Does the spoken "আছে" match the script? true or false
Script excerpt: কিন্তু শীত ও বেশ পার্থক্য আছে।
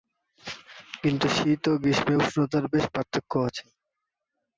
true